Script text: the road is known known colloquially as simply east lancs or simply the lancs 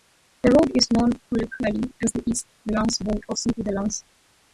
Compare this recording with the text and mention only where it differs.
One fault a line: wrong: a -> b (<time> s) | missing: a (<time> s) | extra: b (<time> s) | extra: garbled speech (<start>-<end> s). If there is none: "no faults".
missing: known (1.1 s)
wrong: simply -> the (2.1 s)
extra: road (3.0 s)